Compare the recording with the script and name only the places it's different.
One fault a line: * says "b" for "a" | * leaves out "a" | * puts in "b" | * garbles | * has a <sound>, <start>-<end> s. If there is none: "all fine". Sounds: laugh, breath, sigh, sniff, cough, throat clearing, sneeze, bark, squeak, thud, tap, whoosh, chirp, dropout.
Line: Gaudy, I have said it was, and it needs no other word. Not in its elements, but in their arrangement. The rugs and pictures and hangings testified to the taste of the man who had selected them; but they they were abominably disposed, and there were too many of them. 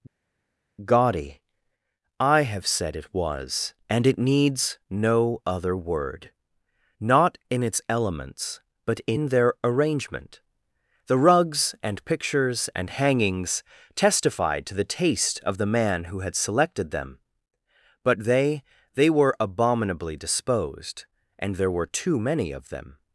all fine